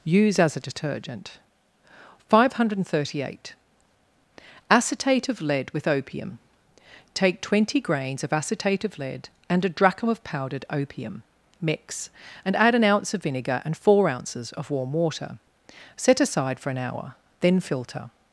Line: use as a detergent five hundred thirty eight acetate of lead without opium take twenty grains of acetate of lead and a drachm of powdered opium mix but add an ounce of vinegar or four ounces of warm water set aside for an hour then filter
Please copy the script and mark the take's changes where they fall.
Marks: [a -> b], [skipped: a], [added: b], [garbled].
use as a detergent five hundred thirty eight acetate of lead [without -> with] opium take twenty grains of acetate of lead and a drachm of powdered opium mix [but -> and] add an ounce of vinegar [or -> and] four ounces of warm water set aside for an hour then filter